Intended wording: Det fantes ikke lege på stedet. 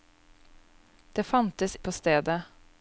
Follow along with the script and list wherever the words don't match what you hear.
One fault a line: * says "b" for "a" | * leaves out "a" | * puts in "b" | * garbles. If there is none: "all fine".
* leaves out "ikke lege"